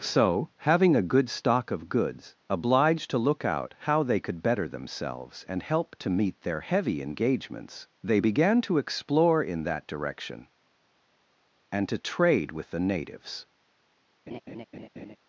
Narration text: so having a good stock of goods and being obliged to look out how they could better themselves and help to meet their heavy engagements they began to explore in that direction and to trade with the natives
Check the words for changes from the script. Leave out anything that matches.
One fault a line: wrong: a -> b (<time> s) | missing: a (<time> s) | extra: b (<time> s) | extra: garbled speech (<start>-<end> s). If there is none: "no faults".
missing: and being (2.4 s)